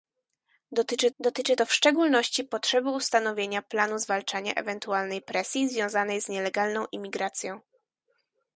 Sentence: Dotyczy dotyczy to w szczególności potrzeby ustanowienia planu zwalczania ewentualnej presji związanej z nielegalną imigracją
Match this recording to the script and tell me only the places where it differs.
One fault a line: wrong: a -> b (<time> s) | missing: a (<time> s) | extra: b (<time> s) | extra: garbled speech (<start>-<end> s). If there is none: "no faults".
no faults